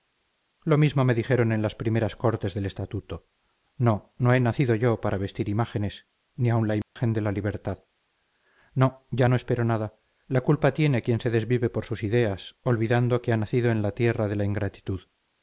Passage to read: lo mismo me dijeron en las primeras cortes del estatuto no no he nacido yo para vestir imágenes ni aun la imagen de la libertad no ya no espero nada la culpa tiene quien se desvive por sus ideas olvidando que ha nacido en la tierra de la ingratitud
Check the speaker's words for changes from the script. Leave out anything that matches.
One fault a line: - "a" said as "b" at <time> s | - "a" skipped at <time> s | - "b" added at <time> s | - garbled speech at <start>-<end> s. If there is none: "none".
none